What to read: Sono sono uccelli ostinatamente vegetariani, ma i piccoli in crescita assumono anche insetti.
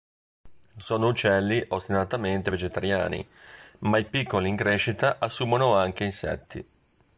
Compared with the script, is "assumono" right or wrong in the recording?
right